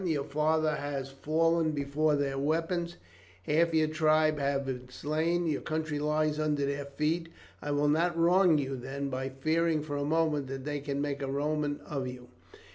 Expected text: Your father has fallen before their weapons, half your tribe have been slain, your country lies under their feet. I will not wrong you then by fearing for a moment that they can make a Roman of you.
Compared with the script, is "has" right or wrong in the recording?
right